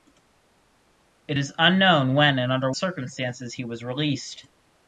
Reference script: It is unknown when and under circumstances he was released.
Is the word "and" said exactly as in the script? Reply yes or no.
yes